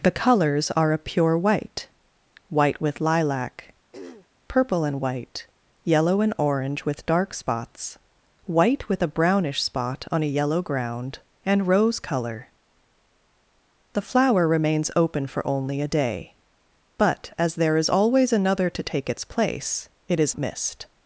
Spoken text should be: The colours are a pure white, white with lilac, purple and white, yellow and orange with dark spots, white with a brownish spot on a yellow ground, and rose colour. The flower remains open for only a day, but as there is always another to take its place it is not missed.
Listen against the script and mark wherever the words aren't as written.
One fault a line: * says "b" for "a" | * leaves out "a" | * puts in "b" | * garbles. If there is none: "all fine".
* leaves out "not"